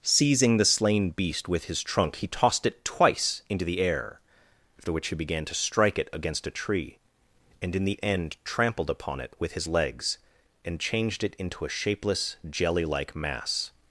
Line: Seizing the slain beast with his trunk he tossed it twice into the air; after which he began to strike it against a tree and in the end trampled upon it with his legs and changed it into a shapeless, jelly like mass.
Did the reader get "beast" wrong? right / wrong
right